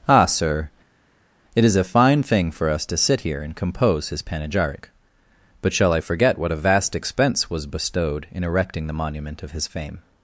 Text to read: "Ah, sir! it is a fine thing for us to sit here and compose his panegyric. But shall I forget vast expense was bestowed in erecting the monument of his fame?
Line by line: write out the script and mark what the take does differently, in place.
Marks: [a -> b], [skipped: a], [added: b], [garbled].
"Ah, sir! it is a fine thing for us to sit here and compose his panegyric. But shall I forget [added: what a] vast expense was bestowed in erecting the monument of his fame?